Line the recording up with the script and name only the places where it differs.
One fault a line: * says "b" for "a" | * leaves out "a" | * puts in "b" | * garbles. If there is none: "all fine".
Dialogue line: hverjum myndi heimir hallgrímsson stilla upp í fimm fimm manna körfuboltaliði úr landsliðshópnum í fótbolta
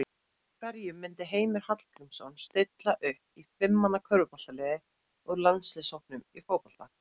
* leaves out "fimm"